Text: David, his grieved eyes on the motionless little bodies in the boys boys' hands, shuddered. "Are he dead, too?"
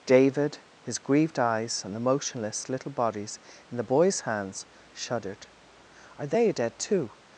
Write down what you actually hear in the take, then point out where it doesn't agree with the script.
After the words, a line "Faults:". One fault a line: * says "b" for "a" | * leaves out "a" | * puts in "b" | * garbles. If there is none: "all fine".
David, his grieved eyes on the motionless little bodies in the boys' hands, shuddered. "Are they dead, too?"
Faults:
* leaves out "boys"
* says "they" for "he"